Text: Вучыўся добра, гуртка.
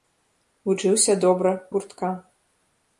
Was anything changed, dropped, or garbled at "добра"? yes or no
no